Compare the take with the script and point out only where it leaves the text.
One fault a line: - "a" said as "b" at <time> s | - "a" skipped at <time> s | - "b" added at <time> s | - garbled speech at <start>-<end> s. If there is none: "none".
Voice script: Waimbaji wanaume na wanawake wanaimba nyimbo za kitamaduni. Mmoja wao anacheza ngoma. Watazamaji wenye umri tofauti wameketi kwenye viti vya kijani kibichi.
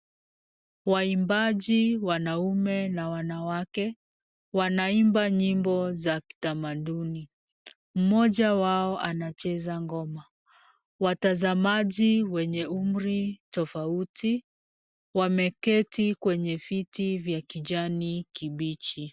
none